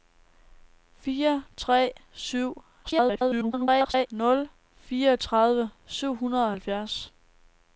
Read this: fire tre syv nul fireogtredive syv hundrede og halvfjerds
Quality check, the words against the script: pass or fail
fail